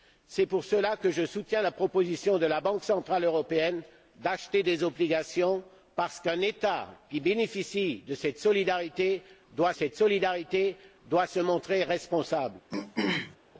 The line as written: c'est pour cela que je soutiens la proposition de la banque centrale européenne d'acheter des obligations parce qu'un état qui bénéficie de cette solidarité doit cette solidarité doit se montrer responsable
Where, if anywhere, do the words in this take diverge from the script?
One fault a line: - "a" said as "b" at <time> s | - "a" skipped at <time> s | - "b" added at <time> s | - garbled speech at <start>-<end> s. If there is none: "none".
none